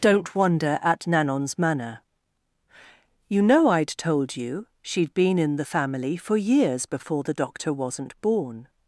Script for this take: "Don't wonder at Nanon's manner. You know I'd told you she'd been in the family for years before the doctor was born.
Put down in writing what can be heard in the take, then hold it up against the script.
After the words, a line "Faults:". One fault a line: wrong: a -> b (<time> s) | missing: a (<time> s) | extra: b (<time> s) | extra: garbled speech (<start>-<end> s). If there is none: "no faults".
"Don't wonder at Nanon's manner. You know I'd told you she'd been in the family for years before the doctor wasn't born.
Faults:
wrong: was -> wasn't (7.7 s)